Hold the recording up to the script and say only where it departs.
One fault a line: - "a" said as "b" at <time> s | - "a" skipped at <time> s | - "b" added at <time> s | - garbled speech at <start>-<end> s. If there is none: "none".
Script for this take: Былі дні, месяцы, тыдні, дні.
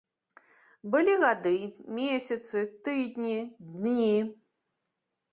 - "дні" said as "гады" at 1.2 s